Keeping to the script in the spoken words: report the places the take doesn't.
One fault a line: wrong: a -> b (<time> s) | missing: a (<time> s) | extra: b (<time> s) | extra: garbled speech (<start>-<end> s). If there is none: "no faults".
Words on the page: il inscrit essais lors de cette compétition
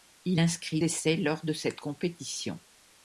no faults